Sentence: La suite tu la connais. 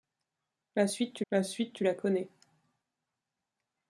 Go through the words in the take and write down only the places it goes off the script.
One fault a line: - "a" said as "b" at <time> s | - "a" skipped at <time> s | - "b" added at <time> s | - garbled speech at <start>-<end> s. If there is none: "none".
- "suite tu la" added at 1.4 s